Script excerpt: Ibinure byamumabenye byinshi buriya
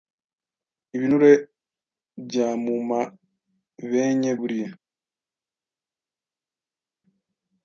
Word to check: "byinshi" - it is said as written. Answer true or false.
false